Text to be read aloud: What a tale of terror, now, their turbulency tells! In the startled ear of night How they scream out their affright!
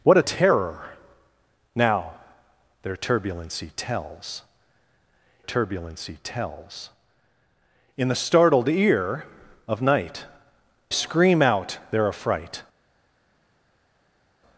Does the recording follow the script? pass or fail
fail